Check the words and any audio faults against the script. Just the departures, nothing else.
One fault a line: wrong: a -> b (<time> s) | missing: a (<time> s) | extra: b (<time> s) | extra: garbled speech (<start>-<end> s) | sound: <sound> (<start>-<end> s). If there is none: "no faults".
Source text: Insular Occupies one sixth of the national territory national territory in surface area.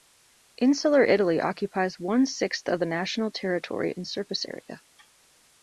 extra: Italy (1.0 s)
missing: national territory (3.9 s)